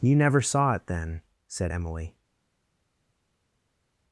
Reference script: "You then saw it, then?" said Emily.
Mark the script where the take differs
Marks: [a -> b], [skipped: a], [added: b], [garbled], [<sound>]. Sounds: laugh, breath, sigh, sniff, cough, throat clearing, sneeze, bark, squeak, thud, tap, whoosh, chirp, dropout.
"You [then -> never] saw it, then?" said Emily.